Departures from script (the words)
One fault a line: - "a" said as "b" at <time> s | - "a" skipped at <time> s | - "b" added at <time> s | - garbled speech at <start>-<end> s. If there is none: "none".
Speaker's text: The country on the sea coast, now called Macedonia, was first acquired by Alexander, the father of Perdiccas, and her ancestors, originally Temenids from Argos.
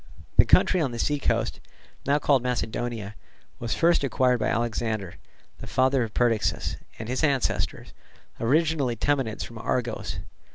- "her" said as "his" at 7.1 s